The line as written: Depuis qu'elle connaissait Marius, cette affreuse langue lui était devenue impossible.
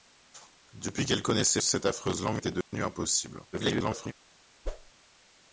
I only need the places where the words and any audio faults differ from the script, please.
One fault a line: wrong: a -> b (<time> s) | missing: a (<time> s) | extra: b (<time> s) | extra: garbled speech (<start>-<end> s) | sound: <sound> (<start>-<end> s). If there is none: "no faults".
missing: Marius (1.6 s)
missing: lui (2.4 s)
sound: dropout (2.6-2.7 s)
extra: garbled speech (3.5-4.1 s)
sound: whoosh (4.6-4.9 s)